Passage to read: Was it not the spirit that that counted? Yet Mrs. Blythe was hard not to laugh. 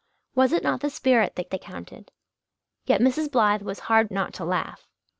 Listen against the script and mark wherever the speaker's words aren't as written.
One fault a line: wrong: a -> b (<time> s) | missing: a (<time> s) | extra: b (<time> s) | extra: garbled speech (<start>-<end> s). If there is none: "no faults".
no faults